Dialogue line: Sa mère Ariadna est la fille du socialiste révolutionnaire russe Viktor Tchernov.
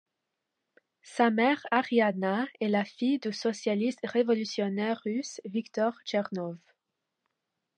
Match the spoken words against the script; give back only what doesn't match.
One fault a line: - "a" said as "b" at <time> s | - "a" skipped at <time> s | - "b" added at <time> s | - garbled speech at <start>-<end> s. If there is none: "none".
none